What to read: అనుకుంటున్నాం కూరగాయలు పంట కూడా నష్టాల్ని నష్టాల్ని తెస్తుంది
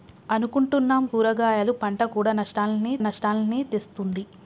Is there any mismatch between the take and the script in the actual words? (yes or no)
no